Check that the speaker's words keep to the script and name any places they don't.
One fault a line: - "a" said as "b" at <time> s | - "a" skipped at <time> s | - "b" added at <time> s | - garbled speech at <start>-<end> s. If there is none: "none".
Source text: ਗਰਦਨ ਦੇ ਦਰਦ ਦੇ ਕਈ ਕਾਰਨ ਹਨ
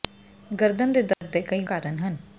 none